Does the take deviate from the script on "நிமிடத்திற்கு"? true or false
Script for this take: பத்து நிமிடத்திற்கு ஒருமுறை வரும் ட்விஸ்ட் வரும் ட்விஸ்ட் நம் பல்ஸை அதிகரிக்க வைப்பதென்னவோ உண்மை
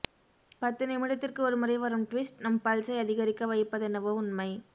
false